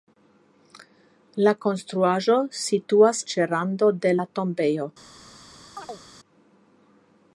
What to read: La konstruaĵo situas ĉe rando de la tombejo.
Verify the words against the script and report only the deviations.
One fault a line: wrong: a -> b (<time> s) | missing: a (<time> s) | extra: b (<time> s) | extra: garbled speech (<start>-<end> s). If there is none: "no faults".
no faults